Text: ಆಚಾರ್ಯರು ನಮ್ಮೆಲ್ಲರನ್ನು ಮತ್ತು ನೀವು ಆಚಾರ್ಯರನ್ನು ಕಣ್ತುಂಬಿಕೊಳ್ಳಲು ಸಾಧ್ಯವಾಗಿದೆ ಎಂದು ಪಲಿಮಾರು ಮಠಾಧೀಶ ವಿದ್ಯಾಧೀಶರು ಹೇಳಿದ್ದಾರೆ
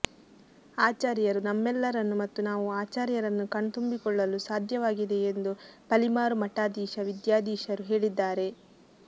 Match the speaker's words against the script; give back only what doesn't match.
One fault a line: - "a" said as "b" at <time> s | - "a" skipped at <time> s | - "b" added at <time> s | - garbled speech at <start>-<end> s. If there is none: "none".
- "ನೀವು" said as "ನಾವು" at 2.5 s